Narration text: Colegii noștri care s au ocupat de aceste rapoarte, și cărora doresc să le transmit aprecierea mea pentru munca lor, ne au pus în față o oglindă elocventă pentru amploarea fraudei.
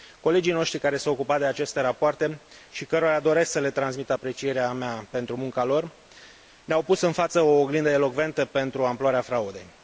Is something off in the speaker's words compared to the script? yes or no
no